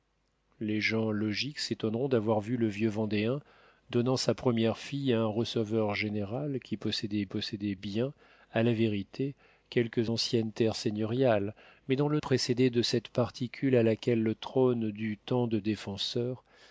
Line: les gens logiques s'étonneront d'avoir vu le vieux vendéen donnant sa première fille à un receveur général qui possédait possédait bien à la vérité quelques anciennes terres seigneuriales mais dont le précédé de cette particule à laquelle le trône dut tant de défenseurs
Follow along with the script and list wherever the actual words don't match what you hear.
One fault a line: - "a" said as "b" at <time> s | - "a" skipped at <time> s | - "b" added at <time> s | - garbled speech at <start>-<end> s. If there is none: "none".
none